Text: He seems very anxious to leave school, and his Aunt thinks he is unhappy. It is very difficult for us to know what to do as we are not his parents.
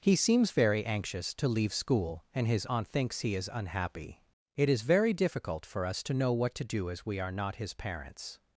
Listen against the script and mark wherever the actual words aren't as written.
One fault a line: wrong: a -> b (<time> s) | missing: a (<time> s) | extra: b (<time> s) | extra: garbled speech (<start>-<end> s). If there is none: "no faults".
no faults